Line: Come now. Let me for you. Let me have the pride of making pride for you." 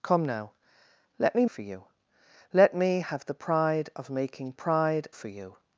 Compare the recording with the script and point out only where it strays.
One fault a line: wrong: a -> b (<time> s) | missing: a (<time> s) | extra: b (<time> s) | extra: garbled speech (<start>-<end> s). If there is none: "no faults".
no faults